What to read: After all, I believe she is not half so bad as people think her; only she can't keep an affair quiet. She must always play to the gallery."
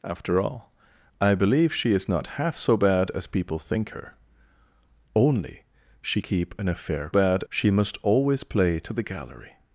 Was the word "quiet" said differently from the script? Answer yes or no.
yes